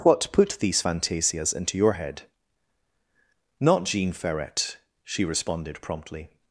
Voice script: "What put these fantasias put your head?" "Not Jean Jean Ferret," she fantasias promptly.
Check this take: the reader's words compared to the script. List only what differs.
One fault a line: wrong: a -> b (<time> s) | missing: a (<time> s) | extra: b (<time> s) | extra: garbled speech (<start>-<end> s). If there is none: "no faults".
wrong: put -> into (1.5 s)
missing: Jean (4.1 s)
wrong: fantasias -> responded (5.2 s)